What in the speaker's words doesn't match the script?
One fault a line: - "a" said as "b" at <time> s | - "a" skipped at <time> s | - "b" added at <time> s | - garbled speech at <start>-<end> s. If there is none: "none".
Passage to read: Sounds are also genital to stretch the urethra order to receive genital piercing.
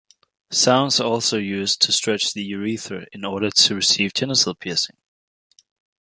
- "genital" said as "used" at 1.4 s
- "in" added at 3.1 s